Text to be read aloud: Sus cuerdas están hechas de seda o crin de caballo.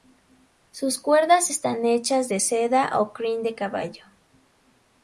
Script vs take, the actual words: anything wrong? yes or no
no